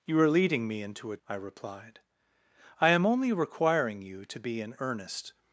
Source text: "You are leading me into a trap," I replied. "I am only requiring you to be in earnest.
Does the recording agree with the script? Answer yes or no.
no